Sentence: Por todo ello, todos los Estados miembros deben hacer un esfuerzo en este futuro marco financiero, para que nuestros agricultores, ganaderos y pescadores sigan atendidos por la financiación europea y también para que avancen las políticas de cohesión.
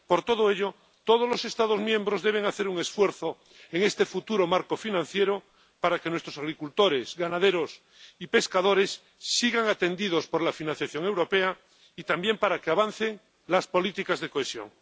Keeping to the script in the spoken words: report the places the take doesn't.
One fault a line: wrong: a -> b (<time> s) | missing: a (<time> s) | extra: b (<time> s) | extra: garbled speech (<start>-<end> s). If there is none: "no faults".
no faults